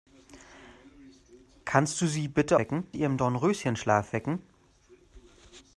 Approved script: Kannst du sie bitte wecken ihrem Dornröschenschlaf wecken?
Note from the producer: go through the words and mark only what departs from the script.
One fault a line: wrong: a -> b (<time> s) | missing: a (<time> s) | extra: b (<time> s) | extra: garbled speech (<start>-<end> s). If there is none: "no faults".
no faults